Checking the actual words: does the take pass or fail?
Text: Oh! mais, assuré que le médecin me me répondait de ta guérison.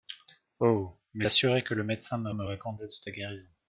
pass